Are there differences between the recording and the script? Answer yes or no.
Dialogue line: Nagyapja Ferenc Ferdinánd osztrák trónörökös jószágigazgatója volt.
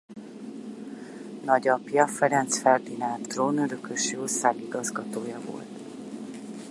yes